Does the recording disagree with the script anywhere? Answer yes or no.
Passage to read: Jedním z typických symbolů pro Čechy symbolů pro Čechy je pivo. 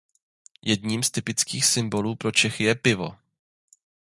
yes